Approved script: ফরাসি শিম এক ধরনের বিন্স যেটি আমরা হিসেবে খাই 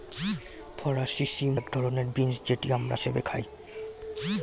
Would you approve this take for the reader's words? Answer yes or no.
yes